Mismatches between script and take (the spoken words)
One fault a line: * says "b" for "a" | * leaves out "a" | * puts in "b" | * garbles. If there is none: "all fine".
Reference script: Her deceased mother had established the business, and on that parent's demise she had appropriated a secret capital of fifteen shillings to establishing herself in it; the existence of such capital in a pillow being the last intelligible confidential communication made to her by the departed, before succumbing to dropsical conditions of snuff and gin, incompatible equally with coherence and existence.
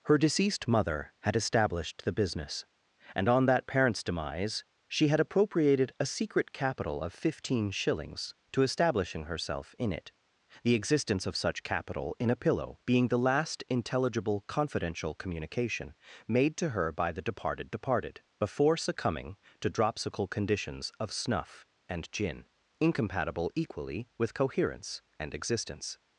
* puts in "departed"